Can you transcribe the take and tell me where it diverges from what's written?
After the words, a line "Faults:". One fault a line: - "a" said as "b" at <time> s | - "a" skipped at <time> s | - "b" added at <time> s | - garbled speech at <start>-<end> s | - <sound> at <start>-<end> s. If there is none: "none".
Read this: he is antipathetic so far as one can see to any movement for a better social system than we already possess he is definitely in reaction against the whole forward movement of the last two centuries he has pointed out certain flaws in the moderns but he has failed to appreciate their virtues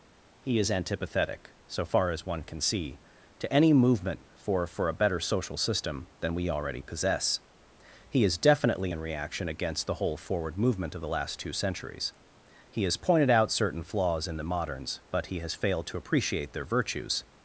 he is antipathetic so far as one can see to any movement for for a better social system than we already possess he is definitely in reaction against the whole forward movement of the last two centuries he has pointed out certain flaws in the moderns but he has failed to appreciate their virtues
Faults:
- "for" added at 4.7 s